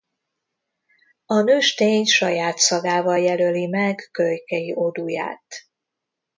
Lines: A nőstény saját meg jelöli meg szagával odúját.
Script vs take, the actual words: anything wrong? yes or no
yes